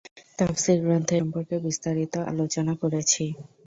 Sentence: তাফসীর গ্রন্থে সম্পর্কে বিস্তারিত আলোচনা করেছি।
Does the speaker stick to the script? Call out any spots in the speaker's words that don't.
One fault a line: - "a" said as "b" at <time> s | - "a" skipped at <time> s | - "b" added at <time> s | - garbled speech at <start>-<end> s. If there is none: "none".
none